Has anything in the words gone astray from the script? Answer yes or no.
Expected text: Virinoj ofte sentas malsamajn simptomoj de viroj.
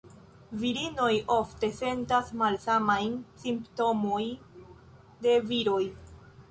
no